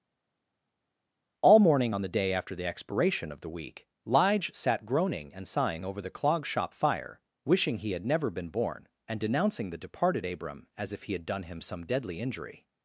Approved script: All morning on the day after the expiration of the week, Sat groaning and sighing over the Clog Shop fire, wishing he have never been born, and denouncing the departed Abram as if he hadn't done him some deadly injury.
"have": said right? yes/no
no